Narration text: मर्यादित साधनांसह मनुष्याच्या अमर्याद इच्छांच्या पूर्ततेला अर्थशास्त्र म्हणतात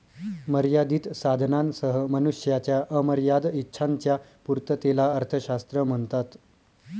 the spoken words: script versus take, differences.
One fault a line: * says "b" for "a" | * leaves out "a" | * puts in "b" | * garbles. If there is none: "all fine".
all fine